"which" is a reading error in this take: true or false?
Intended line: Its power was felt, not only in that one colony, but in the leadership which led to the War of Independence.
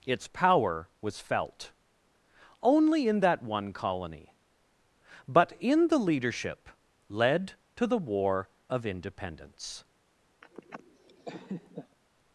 true